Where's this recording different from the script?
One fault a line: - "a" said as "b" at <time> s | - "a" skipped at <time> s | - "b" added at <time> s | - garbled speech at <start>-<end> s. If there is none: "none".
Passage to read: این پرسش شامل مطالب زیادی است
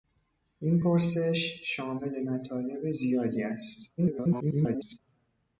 - garbled speech at 4.0-5.0 s